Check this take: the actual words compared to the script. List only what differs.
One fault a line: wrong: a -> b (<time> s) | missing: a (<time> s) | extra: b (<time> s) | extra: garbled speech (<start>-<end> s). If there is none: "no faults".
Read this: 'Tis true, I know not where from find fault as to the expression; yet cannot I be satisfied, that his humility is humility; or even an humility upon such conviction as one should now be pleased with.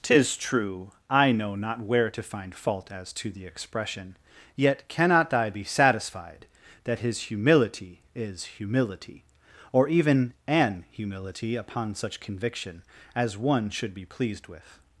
wrong: from -> to (2.1 s)
missing: now (13.9 s)